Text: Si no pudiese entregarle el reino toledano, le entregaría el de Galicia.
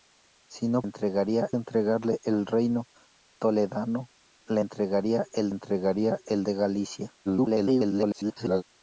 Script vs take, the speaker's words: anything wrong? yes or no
yes